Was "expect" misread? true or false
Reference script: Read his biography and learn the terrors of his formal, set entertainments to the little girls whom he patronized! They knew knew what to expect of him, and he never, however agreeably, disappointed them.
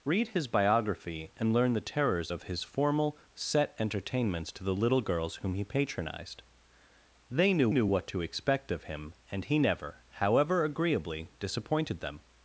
false